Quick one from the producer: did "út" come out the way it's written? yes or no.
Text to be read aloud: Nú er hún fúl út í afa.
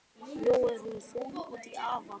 yes